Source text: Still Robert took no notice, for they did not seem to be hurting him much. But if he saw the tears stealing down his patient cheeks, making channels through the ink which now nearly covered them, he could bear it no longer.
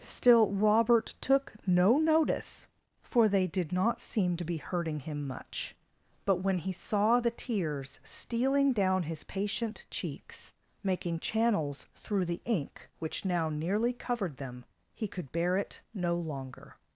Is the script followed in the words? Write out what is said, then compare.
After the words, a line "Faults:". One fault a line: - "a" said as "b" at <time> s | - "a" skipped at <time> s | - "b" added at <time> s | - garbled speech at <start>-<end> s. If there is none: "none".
Still Robert took no notice, for they did not seem to be hurting him much. But when he saw the tears stealing down his patient cheeks, making channels through the ink which now nearly covered them, he could bear it no longer.
Faults:
- "if" said as "when" at 6.4 s